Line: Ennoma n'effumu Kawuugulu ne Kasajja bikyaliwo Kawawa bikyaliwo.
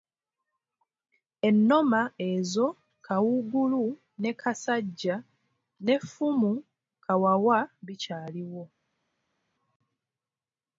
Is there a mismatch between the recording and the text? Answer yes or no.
yes